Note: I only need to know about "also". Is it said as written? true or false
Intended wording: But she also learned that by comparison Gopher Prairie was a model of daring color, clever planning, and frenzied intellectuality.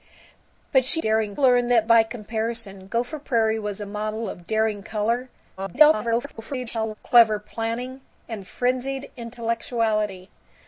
false